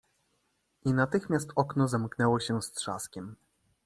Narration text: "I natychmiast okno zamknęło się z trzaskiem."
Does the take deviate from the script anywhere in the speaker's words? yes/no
no